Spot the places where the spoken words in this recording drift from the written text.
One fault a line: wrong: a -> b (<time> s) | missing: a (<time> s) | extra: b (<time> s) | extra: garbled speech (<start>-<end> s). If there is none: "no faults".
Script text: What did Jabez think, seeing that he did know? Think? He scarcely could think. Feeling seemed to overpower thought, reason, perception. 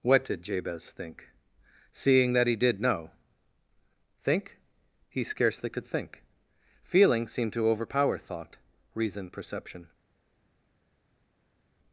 no faults